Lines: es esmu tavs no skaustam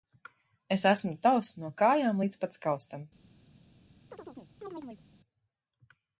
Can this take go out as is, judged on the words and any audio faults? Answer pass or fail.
fail